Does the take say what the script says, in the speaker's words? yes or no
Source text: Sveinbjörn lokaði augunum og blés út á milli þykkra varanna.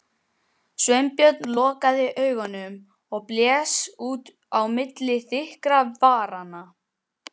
yes